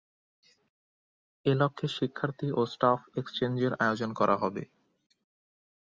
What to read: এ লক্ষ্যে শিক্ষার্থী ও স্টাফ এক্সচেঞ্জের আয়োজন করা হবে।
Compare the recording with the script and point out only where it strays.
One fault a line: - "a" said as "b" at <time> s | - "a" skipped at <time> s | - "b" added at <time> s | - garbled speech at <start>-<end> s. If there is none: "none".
none